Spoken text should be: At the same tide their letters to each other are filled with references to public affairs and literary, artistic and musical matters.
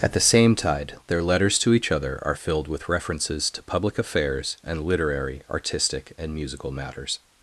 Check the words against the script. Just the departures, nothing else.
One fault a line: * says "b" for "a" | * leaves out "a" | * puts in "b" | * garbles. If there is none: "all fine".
all fine